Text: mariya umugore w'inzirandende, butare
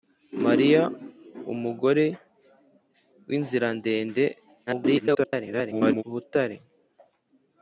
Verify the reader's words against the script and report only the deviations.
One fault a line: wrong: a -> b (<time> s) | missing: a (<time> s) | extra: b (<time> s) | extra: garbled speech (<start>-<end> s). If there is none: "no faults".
extra: garbled speech (4.7-6.0 s)